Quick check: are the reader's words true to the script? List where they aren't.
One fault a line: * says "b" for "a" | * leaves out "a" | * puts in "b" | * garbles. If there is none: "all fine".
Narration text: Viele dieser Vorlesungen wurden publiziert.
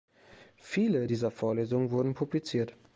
all fine